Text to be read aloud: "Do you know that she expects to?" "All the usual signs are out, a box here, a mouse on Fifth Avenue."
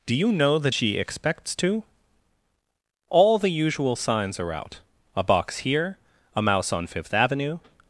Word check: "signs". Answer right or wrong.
right